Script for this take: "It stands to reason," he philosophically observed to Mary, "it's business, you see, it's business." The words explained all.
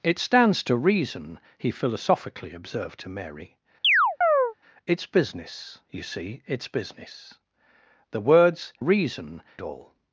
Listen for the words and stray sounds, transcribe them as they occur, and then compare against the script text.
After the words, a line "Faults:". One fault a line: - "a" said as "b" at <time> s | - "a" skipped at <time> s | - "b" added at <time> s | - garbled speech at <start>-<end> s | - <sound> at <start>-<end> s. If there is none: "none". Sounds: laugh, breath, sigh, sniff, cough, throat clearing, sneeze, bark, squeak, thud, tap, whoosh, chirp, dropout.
"It stands to reason," he philosophically observed to Mary, "it's business, you see, it's business." The words reason all.
Faults:
- chirp at 3.8-4.5 s
- "explained" said as "reason" at 8.8 s